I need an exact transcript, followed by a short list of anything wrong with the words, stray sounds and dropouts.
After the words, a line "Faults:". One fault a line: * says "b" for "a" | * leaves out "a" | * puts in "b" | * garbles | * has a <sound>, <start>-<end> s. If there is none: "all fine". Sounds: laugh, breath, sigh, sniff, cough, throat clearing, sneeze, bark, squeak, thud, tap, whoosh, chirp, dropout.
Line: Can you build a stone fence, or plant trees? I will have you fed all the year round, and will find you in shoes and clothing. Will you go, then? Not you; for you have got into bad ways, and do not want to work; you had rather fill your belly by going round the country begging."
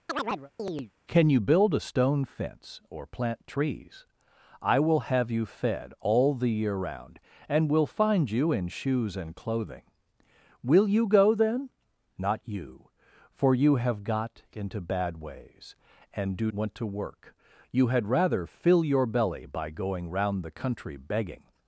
Can you build a stone fence, or plant trees? I will have you fed all the year round, and will find you in shoes and clothing. Will you go, then? Not you; for you have got into bad ways, and do want to work; you had rather fill your belly by going round the country begging."
Faults:
* has a chirp, 0.1-0.9 s
* leaves out "not"